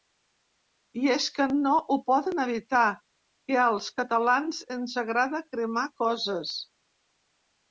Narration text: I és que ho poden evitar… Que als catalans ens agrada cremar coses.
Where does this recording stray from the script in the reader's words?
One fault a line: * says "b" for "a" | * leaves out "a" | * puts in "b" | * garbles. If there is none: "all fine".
* puts in "no"